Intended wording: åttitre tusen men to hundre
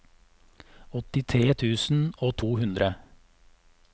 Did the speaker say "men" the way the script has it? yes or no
no